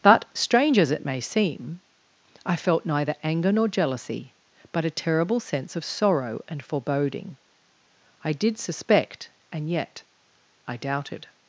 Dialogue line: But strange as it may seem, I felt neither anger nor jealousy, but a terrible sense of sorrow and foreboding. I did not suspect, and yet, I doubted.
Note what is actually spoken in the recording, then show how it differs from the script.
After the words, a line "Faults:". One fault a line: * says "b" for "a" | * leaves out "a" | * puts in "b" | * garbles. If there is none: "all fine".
But strange as it may seem, I felt neither anger nor jealousy, but a terrible sense of sorrow and foreboding. I did suspect, and yet, I doubted.
Faults:
* leaves out "not"